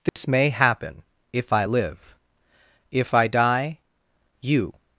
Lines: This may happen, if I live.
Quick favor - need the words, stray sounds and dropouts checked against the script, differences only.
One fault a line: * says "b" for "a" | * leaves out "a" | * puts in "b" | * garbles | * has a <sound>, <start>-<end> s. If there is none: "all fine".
* has a dropout, 0.1-0.2 s
* puts in "If I die you"